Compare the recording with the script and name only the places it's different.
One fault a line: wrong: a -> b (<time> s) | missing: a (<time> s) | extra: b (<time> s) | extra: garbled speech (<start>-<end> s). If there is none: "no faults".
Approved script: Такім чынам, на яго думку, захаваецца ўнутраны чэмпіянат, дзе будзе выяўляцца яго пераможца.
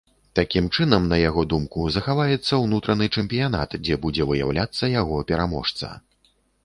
no faults